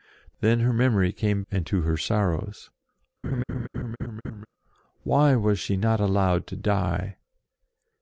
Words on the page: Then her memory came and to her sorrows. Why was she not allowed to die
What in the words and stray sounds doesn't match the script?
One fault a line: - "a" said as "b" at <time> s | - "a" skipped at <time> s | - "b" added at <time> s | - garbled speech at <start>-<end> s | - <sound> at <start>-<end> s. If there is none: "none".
- laugh at 3.2-4.5 s